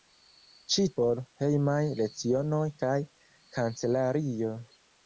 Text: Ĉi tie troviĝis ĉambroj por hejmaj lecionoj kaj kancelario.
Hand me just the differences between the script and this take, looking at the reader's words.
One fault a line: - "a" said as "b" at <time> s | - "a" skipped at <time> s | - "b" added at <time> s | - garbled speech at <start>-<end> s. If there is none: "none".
- "tie troviĝis ĉambroj" skipped at 0.8 s